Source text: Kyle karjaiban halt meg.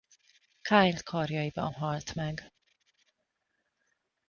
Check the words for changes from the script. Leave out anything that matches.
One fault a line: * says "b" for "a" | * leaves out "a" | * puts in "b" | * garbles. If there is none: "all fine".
all fine